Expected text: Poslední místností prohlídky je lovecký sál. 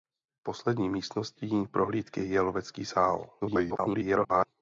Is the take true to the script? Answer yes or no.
no